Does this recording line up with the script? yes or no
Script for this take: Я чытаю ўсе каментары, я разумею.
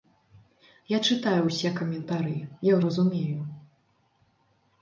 yes